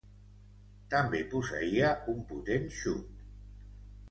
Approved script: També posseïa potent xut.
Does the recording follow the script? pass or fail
fail